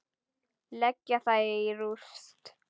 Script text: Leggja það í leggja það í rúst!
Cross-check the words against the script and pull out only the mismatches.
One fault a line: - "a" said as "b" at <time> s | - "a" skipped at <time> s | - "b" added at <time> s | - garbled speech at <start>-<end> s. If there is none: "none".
- "leggja það í" skipped at 1.8 s